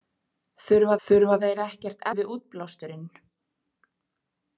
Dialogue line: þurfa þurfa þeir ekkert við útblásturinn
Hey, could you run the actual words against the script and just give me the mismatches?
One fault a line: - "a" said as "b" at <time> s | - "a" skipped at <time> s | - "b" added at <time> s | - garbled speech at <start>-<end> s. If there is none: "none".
none